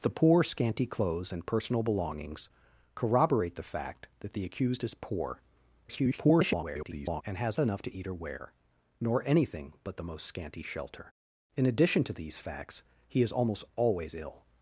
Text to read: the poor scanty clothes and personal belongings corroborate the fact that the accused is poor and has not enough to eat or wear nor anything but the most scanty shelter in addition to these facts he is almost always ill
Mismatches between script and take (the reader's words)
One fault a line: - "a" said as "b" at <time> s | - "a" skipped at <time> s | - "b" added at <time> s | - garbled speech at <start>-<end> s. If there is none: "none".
- garbled speech at 5.9-7.2 s
- "not" skipped at 7.6 s